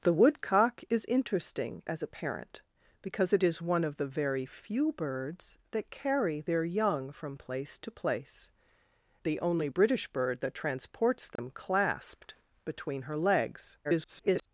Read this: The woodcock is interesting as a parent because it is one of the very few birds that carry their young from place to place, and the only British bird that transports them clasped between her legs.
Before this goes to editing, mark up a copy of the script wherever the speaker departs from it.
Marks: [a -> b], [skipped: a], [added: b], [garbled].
The woodcock is interesting as a parent because it is one of the very few birds that carry their young from place to place, [skipped: and] the only British bird that transports them clasped between her legs. [garbled]